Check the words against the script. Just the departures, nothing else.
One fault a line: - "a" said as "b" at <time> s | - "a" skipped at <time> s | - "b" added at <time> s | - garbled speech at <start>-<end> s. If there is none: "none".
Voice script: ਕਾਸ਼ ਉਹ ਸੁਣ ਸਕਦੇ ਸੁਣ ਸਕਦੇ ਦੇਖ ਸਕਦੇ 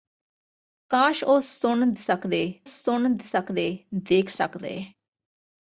none